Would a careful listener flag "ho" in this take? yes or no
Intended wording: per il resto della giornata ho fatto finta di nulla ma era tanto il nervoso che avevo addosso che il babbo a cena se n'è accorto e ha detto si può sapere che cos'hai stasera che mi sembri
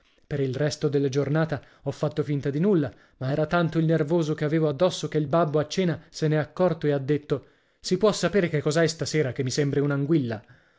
no